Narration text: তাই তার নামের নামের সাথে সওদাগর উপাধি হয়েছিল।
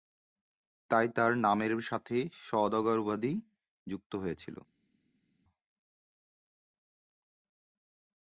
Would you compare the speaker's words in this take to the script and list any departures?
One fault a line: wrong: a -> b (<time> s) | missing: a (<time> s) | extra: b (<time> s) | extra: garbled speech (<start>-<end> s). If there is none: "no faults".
missing: নামের (1.7 s)
extra: যুক্ত (3.9 s)